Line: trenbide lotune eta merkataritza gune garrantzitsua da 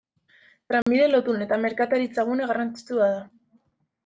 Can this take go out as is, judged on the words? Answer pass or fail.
pass